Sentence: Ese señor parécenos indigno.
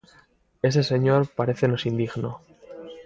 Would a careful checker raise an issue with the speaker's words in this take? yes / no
no